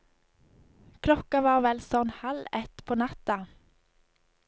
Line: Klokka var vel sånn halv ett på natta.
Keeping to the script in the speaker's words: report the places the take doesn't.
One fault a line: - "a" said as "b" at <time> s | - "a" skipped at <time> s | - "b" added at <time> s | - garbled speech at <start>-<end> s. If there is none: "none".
none